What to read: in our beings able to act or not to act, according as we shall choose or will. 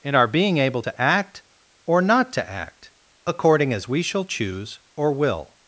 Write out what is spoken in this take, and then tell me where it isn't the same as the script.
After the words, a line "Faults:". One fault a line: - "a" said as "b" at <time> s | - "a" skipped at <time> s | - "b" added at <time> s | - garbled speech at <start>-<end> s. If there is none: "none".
in our being able to act or not to act, according as we shall choose or will.
Faults:
- "beings" said as "being" at 0.3 s